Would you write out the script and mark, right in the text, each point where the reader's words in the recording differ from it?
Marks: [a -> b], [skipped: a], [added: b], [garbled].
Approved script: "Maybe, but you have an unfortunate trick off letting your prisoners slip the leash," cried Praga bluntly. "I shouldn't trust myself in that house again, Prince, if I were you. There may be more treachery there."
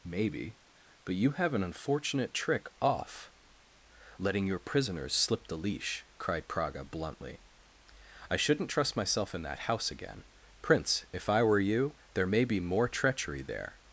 "Maybe, but you have an unfortunate trick off letting your prisoners slip the leash," cried Praga bluntly. "I shouldn't trust myself in that house again, Prince, if I were you. There may be more treachery there."